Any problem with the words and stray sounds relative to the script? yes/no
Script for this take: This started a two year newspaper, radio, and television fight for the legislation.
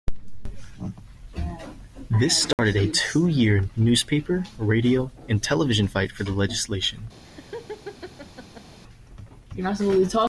yes